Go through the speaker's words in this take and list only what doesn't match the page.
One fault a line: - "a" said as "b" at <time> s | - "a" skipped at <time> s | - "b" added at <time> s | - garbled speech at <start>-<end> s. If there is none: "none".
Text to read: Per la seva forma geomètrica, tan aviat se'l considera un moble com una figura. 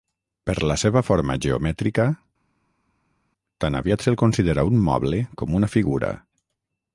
none